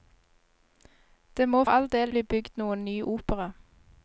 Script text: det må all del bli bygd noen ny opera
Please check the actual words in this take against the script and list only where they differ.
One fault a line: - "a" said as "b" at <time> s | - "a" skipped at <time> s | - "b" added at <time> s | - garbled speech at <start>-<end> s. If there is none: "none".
none